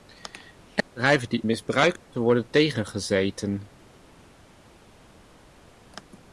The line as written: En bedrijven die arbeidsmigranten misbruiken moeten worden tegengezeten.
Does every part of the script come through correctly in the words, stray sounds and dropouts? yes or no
no